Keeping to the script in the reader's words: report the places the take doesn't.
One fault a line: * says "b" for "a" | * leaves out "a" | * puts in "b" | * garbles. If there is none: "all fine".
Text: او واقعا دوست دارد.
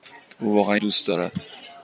all fine